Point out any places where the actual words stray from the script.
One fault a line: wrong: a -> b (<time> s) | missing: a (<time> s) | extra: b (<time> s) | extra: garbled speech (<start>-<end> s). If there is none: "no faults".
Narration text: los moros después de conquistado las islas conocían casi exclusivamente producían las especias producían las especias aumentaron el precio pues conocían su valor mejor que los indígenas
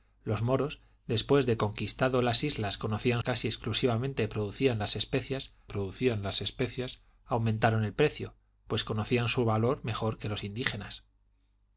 no faults